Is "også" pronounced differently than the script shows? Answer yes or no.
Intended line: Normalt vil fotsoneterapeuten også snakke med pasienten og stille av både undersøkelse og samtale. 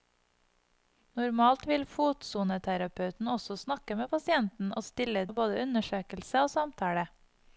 no